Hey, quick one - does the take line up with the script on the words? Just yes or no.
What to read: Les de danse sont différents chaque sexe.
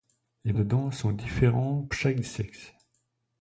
yes